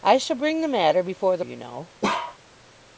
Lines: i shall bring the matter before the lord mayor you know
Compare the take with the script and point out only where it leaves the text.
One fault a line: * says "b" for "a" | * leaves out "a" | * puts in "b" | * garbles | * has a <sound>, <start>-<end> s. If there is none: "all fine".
* leaves out "lord mayor"
* has a bark, 2.0-2.4 s